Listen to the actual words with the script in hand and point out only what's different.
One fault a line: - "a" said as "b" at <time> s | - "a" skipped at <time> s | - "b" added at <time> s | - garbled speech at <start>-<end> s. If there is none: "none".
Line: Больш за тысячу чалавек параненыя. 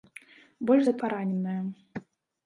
- "тысячу чалавек" skipped at 0.9 s